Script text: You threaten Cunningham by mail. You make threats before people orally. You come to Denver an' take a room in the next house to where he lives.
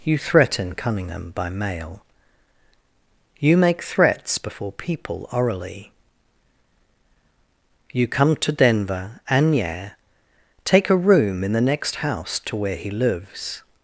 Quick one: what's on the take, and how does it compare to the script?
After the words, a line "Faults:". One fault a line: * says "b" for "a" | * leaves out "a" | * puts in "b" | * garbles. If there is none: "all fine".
You threaten Cunningham by mail. You make threats before people orally. You come to Denver and yeah' take a room in the next house to where he lives.
Faults:
* says "and yeah" for "an"